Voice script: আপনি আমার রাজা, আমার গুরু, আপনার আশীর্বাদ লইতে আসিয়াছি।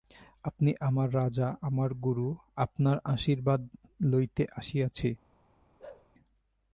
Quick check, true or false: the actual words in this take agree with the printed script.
true